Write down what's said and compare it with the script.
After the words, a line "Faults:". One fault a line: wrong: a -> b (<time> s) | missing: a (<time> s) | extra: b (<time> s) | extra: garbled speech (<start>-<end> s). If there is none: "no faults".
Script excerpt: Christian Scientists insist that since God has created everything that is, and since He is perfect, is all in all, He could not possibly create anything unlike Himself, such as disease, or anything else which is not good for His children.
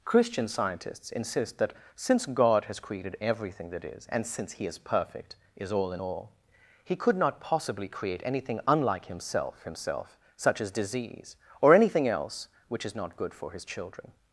Christian Scientists insist that since God has created everything that is, and since He is perfect, is all in all, He could not possibly create anything unlike Himself Himself, such as disease, or anything else which is not good for His children.
Faults:
extra: Himself (9.6 s)